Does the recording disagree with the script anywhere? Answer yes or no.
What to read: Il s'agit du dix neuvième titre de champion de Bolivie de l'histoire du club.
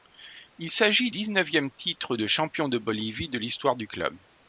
yes